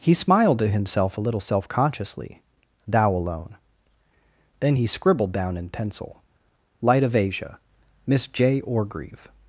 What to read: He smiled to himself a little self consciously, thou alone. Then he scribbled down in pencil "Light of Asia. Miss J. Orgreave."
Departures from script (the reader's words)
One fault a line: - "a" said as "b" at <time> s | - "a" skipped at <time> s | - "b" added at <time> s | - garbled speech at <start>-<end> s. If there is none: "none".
none